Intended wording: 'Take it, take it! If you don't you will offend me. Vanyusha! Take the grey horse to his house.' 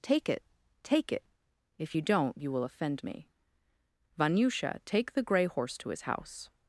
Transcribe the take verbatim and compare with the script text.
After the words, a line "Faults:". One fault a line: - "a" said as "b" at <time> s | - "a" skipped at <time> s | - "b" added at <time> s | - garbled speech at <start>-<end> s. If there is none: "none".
'Take it, take it! If you don't you will offend me. Vanyusha! Take the grey horse to his house.'
Faults:
none